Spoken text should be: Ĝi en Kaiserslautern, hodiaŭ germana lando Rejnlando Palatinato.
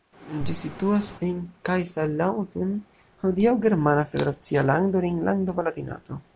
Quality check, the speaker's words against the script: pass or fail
fail